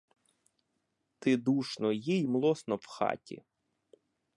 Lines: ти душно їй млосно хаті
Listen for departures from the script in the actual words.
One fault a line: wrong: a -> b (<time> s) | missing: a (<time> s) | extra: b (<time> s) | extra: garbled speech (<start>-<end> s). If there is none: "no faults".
extra: в (2.8 s)